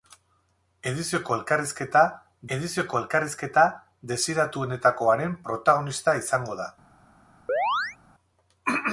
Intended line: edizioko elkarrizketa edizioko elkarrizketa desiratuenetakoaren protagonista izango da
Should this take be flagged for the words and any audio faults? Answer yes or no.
yes